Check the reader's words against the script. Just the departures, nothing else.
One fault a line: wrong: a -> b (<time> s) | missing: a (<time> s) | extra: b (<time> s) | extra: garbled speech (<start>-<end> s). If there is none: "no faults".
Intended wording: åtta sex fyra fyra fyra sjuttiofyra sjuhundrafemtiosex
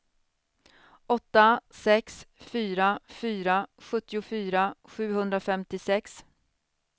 missing: fyra (3.7 s)